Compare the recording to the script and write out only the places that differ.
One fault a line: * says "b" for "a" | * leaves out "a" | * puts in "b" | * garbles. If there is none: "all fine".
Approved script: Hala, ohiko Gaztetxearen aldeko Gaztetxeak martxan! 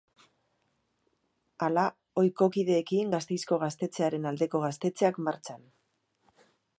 * puts in "kideekin Gasteizko"